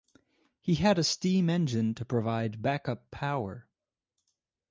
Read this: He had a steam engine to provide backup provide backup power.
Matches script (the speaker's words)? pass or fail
fail